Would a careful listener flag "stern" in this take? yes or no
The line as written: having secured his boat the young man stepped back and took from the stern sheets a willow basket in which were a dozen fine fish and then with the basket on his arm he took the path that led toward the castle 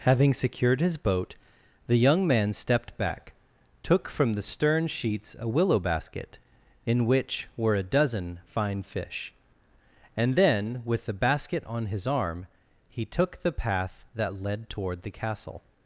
no